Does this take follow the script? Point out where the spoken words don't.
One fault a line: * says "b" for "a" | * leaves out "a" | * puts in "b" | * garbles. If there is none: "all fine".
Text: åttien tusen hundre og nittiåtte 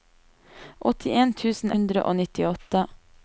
all fine